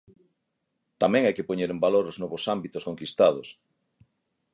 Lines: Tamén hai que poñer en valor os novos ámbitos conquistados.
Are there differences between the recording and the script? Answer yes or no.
no